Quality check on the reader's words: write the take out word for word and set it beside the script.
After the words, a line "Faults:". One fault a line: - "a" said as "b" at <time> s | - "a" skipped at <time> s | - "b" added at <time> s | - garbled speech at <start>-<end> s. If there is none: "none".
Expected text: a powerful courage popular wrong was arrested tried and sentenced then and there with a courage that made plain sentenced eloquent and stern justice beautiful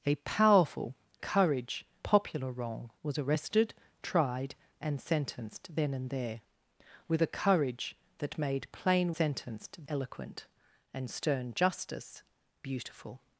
a powerful courage popular wrong was arrested tried and sentenced then and there with a courage that made plain sentenced eloquent and stern justice beautiful
Faults:
none